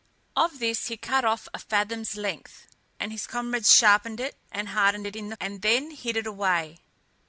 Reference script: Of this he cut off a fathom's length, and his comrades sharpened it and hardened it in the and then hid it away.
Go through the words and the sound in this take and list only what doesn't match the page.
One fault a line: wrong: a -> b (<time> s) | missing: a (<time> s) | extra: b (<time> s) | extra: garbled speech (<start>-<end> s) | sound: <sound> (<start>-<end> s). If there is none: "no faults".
no faults